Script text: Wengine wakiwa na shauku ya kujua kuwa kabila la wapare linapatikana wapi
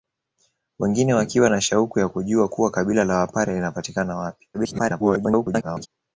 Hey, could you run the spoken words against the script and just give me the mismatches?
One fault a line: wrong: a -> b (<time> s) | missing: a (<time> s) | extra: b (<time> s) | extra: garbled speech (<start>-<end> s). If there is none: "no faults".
extra: garbled speech (4.5-5.9 s)